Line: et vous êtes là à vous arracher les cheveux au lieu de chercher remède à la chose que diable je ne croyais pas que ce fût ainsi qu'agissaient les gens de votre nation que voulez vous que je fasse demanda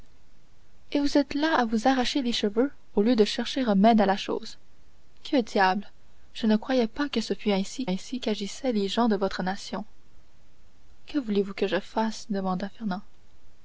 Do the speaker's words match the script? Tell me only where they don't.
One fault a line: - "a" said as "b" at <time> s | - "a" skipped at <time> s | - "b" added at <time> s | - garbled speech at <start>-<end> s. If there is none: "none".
- "ainsi" added at 7.8 s